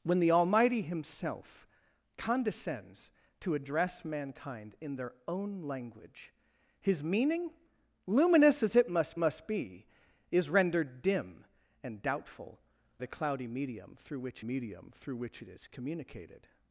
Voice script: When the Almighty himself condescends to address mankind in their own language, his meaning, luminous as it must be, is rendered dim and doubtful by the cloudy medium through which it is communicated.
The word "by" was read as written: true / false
false